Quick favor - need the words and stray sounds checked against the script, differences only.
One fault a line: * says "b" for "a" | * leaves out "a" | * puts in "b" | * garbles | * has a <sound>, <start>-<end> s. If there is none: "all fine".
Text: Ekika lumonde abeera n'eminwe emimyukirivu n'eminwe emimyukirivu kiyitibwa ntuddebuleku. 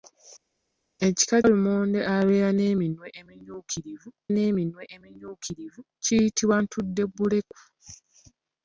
all fine